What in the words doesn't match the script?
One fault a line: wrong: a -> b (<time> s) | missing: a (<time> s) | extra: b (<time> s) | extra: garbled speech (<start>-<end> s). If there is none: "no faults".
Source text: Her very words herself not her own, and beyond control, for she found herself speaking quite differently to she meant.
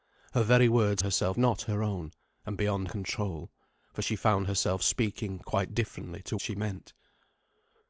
no faults